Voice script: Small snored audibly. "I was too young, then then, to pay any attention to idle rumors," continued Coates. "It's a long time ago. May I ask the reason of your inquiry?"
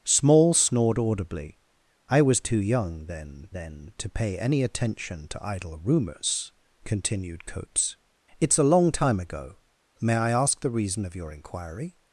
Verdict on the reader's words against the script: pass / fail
pass